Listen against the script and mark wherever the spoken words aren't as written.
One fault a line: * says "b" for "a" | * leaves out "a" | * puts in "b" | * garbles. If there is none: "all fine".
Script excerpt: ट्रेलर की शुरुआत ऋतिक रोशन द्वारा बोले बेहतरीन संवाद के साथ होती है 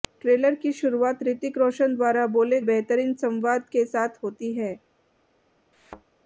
all fine